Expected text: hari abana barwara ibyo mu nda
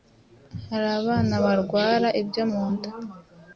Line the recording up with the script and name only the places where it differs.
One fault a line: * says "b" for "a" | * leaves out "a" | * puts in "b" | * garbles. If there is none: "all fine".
all fine